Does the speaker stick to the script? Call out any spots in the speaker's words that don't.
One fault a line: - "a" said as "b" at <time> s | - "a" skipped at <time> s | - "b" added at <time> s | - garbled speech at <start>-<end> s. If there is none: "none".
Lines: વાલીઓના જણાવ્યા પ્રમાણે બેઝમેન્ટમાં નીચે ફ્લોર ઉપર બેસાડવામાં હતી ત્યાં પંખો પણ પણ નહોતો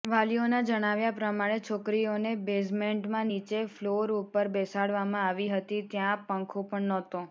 - "છોકરીઓને" added at 1.6 s
- "આવી" added at 5.2 s
- "પણ" skipped at 6.9 s